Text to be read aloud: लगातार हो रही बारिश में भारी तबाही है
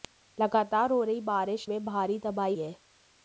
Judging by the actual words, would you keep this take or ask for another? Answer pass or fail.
pass